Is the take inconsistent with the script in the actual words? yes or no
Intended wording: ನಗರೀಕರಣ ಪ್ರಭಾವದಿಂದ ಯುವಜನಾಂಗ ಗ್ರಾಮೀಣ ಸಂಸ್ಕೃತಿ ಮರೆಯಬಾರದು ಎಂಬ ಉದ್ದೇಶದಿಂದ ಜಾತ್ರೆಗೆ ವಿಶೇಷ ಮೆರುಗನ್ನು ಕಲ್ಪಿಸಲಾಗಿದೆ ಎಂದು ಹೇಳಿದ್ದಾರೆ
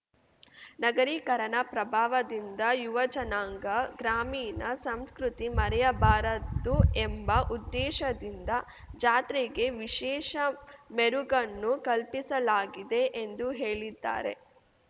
no